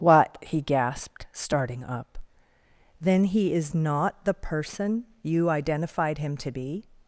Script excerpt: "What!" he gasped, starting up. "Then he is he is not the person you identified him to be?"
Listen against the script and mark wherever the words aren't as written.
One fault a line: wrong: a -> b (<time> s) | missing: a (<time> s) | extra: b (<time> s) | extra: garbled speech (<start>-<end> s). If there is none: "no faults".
missing: he is (3.8 s)